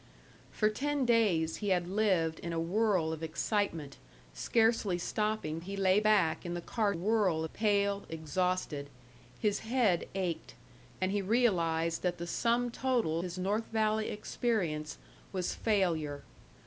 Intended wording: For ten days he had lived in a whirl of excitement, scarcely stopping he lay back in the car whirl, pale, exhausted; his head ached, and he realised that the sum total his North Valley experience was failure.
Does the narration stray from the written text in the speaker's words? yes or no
no